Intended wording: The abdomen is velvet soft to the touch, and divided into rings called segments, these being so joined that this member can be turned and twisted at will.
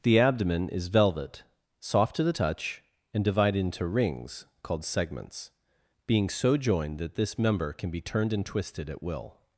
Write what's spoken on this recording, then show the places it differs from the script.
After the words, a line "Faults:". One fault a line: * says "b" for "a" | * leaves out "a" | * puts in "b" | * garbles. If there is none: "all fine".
The abdomen is velvet soft to the touch, and divided into rings called segments, being so joined that this member can be turned and twisted at will.
Faults:
* leaves out "these"